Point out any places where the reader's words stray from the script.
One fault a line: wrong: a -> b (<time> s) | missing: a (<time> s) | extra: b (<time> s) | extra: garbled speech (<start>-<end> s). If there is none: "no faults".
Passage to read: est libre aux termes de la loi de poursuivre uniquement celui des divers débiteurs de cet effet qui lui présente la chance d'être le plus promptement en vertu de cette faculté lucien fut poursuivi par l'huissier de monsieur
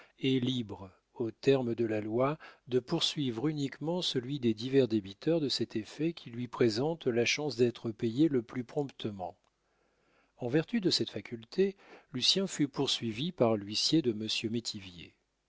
extra: payé (7.9 s)